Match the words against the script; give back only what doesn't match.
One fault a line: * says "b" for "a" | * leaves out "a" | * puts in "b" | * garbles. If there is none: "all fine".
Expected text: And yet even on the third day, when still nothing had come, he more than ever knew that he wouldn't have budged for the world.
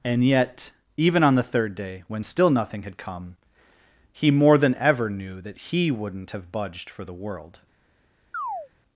all fine